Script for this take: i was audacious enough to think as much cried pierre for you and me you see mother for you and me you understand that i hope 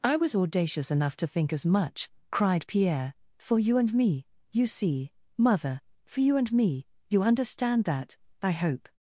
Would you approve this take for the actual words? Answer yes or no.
yes